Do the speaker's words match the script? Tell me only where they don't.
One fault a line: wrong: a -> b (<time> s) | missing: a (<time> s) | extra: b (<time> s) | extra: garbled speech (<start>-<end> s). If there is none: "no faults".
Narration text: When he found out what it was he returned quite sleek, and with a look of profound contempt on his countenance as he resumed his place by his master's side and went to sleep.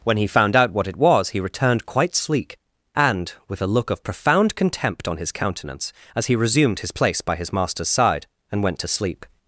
no faults